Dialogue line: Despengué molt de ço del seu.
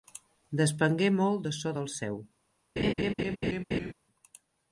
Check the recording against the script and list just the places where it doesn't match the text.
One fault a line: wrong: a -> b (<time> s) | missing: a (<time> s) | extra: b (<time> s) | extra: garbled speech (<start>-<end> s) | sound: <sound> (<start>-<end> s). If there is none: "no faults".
sound: laugh (2.8-3.9 s)